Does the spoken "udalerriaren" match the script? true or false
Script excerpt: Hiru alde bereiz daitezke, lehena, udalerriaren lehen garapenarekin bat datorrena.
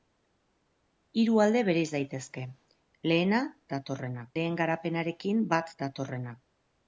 false